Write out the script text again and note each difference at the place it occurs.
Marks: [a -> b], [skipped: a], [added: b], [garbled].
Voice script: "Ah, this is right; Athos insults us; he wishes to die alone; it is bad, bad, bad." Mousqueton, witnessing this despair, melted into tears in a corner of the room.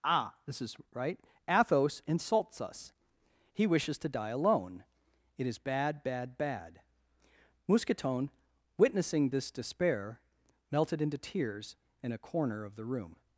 "Ah, this is right; Athos insults us; he wishes to die alone; it is bad, bad, bad." Mousqueton, witnessing this despair, melted into tears in a corner of the room.